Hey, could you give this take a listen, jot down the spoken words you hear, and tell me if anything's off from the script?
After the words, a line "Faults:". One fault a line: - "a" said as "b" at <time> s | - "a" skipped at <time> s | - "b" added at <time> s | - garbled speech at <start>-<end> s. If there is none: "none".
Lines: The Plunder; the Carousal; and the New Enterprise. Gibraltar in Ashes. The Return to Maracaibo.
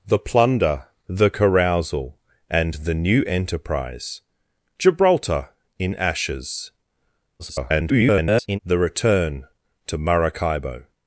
The Plunder; the Carousal; and the New Enterprise. Gibraltar in Ashes. [garbled] The Return to Maracaibo.
Faults:
- garbled speech at 7.4-8.6 s